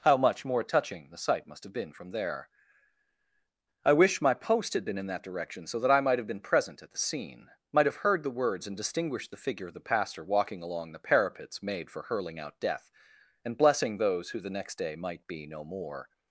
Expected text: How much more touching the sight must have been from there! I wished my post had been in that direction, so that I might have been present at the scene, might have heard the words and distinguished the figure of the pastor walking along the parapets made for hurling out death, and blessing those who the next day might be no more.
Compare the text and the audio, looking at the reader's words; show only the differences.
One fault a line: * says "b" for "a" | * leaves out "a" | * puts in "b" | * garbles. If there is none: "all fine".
* says "wish" for "wished"